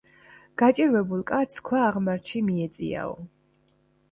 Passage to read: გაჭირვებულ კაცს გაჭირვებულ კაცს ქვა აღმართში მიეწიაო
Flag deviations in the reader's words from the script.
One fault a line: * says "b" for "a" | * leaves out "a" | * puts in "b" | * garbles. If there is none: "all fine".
* leaves out "გაჭირვებულ კაცს"